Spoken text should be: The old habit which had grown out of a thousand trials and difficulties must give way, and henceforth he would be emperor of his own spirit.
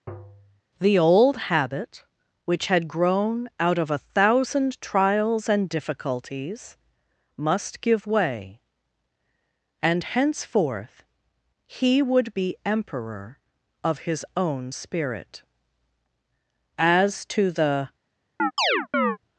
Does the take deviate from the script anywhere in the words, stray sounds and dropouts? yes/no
yes